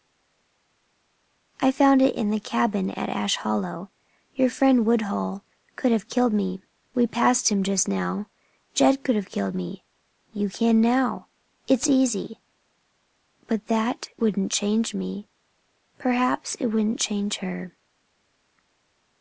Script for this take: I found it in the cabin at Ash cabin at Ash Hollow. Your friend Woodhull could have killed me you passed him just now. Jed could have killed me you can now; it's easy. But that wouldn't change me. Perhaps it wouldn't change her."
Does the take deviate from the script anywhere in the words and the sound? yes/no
yes